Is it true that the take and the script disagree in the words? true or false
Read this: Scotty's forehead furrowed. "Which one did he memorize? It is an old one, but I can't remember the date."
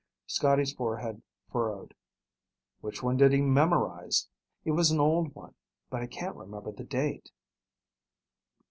true